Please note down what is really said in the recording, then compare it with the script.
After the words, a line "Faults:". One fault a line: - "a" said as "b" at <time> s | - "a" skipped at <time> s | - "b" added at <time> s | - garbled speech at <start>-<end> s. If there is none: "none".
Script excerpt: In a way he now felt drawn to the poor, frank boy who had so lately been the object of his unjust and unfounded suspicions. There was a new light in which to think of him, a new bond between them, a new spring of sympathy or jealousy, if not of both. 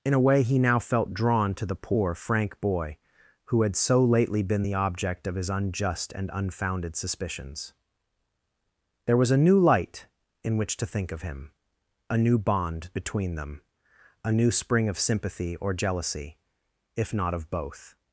In a way he now felt drawn to the poor, frank boy who had so lately been the object of his unjust and unfounded suspicions. There was a new light in which to think of him, a new bond between them, a new spring of sympathy or jealousy, if not of both.
Faults:
none